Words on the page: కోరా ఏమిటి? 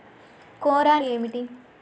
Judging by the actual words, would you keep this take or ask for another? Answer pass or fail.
pass